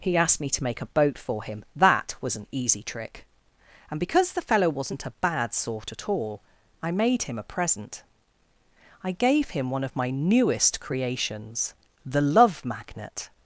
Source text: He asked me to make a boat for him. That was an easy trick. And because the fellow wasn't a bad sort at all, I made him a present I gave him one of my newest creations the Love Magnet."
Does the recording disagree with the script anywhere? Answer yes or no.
no